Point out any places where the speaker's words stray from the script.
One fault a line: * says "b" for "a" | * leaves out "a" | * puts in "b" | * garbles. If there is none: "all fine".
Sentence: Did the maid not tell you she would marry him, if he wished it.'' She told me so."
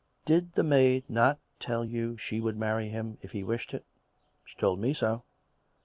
all fine